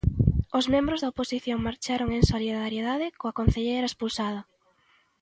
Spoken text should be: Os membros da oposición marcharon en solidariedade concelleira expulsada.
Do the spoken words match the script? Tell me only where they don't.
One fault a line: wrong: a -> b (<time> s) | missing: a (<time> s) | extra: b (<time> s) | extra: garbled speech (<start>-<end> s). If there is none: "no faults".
extra: coa (3.2 s)